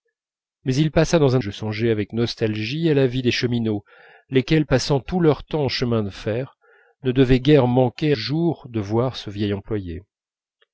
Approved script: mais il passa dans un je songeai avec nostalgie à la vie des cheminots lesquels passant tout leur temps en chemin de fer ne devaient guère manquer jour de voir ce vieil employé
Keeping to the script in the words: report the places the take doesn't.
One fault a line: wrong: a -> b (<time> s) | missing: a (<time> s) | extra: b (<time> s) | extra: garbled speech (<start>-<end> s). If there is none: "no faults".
no faults